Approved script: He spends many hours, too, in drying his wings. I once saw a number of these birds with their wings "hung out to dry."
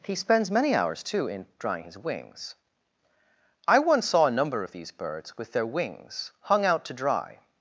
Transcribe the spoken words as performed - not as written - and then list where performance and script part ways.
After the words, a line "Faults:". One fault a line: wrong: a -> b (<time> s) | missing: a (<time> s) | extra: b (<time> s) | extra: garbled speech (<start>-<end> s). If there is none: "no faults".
He spends many hours, too, in drying his wings. I once saw a number of these birds with their wings "hung out to dry."
Faults:
no faults